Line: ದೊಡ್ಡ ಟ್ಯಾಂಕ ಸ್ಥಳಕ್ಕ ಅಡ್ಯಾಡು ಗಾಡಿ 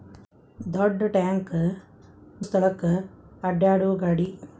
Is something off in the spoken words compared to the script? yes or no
no